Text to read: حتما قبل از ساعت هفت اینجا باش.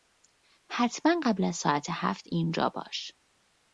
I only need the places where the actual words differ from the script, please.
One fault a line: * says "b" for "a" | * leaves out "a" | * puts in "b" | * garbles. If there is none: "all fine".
all fine